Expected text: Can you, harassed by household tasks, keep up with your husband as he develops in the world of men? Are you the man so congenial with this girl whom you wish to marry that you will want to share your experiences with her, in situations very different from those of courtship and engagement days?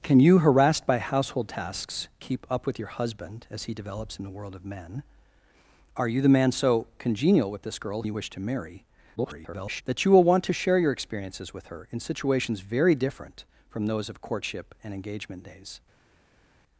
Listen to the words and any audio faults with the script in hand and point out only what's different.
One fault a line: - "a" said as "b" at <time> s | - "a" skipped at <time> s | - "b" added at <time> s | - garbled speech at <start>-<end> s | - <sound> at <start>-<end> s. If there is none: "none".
- "whom" skipped at 8.0 s
- garbled speech at 9.2-9.8 s